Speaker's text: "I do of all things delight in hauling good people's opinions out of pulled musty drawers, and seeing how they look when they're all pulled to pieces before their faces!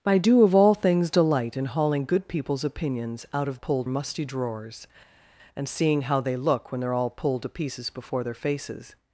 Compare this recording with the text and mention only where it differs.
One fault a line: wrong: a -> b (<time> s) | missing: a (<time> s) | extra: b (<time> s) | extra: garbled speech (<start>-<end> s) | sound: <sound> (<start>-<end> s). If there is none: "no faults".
no faults